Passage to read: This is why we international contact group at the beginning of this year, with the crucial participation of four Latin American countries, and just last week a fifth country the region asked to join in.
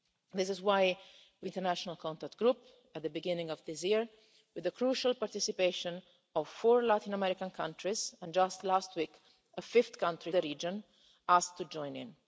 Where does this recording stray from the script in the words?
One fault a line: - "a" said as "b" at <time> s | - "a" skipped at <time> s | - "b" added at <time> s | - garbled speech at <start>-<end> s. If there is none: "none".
none